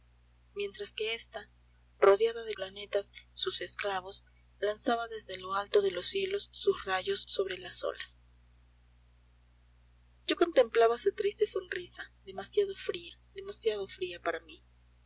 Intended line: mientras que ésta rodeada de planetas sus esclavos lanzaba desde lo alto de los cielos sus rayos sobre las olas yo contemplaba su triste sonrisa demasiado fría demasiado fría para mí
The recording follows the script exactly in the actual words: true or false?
true